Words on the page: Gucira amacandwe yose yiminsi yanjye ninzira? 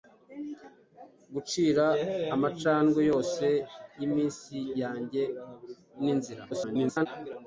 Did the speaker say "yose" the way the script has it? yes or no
yes